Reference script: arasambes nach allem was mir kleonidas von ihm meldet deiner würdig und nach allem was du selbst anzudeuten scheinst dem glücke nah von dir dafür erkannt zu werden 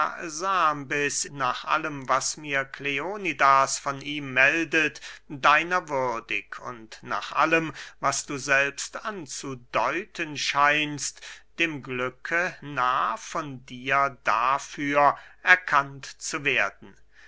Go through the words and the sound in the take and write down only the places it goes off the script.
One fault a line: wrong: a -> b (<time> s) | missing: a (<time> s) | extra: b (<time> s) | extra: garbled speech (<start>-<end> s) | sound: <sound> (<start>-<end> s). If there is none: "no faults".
no faults